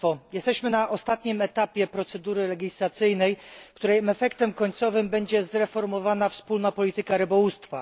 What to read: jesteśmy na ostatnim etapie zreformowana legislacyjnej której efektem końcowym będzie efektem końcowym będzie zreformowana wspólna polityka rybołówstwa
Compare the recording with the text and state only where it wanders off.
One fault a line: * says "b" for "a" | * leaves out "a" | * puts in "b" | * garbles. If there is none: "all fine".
* says "procedury" for "zreformowana"
* leaves out "efektem końcowym będzie"